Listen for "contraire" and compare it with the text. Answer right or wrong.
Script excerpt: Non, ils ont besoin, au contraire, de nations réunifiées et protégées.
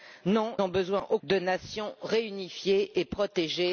wrong